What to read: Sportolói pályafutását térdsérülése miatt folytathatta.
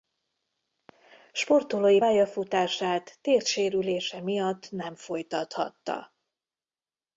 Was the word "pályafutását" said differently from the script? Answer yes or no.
no